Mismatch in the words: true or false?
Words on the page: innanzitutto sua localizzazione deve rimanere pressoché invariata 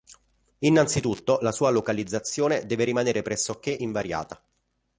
true